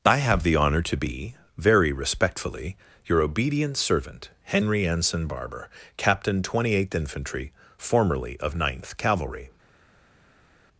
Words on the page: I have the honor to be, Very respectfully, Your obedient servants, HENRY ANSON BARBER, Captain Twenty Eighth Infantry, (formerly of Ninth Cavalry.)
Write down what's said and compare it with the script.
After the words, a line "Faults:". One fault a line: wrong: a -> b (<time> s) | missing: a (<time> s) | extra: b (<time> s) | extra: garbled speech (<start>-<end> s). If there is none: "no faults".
I have the honor to be, Very respectfully, Your obedient servant, HENRY ANSON BARBER, Captain Twenty Eighth Infantry, (formerly of Ninth Cavalry.)
Faults:
wrong: servants -> servant (3.8 s)